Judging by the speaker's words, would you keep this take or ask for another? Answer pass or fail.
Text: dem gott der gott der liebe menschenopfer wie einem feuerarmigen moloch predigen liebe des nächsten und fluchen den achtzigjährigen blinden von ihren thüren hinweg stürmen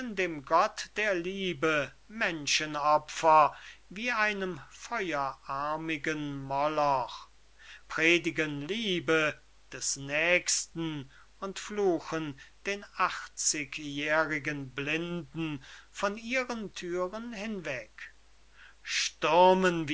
fail